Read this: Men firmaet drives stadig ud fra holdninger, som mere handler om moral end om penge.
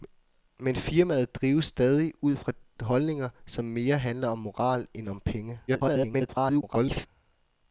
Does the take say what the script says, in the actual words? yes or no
no